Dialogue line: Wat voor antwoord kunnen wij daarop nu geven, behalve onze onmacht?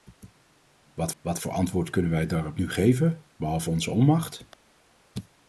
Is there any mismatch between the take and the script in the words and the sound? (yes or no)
yes